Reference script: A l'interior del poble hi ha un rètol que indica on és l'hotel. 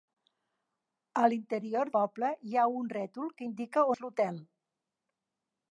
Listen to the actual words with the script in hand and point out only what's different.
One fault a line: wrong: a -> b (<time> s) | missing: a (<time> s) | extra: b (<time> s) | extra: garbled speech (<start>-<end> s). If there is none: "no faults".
missing: del (1.9 s)
missing: on (3.8 s)